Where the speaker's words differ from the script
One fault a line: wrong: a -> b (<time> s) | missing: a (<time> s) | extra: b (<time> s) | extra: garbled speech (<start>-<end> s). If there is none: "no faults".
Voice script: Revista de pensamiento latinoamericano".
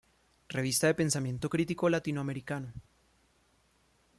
extra: crítico (1.5 s)